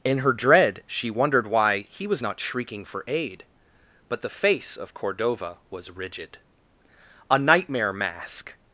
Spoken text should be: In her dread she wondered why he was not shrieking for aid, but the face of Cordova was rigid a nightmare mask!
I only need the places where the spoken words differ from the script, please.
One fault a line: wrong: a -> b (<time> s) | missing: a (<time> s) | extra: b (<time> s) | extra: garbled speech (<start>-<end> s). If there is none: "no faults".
no faults